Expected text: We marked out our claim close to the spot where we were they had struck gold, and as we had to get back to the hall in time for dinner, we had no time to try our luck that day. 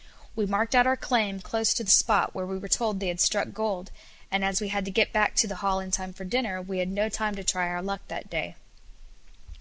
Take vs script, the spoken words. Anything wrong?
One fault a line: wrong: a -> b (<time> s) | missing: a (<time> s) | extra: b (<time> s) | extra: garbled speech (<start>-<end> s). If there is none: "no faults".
extra: told (2.7 s)